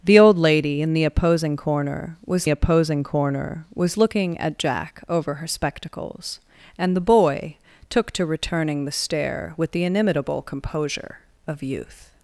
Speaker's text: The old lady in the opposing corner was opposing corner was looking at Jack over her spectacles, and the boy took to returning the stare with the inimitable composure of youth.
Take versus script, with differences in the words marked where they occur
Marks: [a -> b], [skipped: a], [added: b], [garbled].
The old lady in the opposing corner was opposing corner was looking at Jack over her spectacles, and the boy took to returning the stare with the inimitable composure of youth.